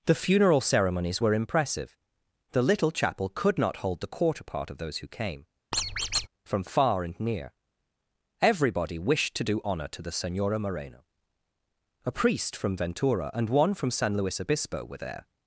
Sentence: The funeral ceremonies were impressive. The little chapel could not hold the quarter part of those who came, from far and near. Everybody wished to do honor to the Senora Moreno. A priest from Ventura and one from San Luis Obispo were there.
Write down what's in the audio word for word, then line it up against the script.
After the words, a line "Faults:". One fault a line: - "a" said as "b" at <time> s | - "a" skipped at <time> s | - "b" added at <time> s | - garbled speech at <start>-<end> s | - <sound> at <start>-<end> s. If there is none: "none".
The funeral ceremonies were impressive. The little chapel could not hold the quarter part of those who came, from far and near. Everybody wished to do honor to the Senora Moreno. A priest from Ventura and one from San Luis Obispo were there.
Faults:
- squeak at 5.7-6.3 s